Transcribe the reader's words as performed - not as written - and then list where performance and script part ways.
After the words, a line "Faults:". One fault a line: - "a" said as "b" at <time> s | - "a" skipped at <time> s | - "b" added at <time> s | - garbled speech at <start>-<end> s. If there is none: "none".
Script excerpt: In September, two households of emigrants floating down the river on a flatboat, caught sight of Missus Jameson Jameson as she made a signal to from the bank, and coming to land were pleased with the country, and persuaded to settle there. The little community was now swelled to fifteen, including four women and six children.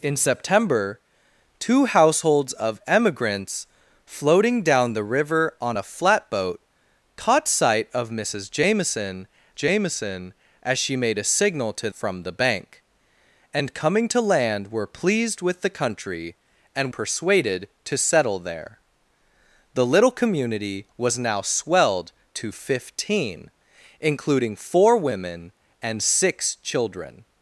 In September, two households of emigrants floating down the river on a flatboat, caught sight of Missus Jameson Jameson as she made a signal to from the bank, and coming to land were pleased with the country, and persuaded to settle there. The little community was now swelled to fifteen, including four women and six children.
Faults:
none